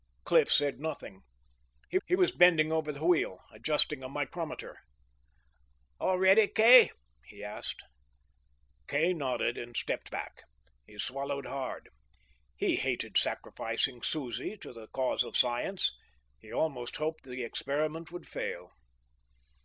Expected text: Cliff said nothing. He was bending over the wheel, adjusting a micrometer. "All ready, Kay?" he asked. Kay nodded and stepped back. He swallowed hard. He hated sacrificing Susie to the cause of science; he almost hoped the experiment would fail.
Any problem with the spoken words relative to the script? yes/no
yes